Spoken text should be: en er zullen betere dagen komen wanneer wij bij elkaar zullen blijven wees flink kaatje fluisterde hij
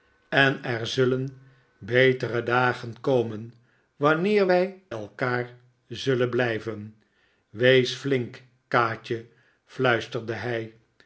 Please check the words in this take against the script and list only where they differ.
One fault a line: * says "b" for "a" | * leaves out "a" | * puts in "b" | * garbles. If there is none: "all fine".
* leaves out "bij"